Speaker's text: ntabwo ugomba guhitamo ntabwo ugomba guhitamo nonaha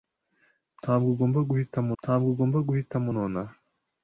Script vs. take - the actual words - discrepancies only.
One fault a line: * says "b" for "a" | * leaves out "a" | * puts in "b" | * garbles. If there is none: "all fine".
all fine